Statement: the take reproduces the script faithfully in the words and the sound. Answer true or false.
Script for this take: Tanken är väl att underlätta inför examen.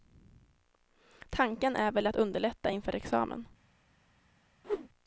false